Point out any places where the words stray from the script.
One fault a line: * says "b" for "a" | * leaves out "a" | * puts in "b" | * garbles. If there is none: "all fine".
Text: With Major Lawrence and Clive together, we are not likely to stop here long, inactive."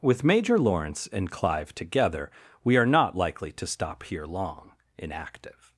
all fine